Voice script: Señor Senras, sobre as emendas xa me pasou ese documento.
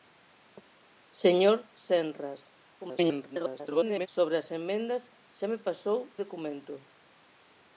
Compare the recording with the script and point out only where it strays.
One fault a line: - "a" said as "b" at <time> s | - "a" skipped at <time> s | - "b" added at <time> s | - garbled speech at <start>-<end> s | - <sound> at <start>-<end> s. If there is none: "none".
- garbled speech at 2.8-4.1 s
- "ese" skipped at 6.0 s